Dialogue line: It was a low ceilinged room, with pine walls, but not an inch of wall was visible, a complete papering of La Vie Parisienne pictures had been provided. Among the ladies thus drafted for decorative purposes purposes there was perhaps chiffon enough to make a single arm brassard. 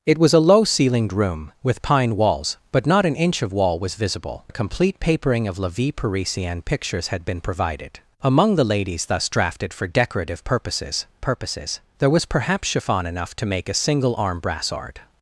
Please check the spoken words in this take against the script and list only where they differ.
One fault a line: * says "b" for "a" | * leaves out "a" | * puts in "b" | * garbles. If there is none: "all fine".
all fine